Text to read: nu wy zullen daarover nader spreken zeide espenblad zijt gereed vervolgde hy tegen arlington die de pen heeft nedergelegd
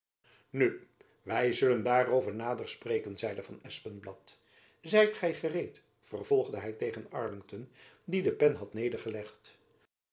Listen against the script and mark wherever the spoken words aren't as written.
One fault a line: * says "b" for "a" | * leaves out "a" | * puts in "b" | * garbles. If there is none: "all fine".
* puts in "van"
* puts in "gy"
* says "had" for "heeft"